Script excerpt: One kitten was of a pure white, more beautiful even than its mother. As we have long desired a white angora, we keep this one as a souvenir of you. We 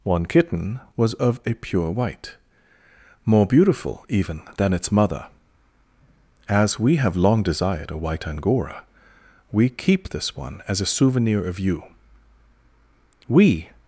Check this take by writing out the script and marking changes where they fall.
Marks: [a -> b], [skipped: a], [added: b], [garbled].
One kitten was of a pure white, more beautiful even than its mother. As we have long desired a white angora, we keep this one as a souvenir of you. We